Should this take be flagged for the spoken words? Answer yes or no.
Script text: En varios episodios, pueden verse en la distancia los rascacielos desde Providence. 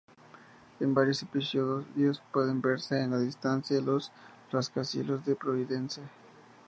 yes